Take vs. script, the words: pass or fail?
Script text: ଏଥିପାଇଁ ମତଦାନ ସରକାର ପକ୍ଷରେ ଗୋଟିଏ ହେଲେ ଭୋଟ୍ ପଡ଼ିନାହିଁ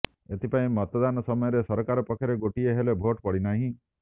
fail